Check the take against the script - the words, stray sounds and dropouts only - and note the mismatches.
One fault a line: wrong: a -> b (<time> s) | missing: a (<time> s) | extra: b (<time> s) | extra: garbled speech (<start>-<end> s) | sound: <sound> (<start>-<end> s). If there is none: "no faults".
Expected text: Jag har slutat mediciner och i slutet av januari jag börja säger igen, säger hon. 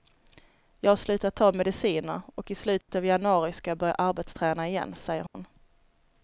extra: ta (1.4 s)
sound: dropout (2.8-2.9 s)
extra: ska (3.5 s)
wrong: säger -> arbetsträna (3.9 s)
sound: dropout (5.3-5.3 s)